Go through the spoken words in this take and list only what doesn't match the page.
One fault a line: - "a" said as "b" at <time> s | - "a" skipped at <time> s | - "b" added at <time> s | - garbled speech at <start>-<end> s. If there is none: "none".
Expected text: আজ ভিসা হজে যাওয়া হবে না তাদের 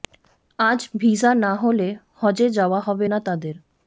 - "না হলে" added at 1.4 s